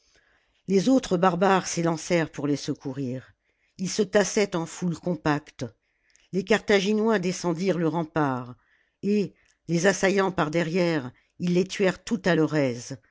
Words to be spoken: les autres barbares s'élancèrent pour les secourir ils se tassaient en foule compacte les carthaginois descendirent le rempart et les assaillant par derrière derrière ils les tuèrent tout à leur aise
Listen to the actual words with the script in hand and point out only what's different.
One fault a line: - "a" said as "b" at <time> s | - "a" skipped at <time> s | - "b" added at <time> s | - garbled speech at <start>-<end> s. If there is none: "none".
- "derrière" skipped at 11.1 s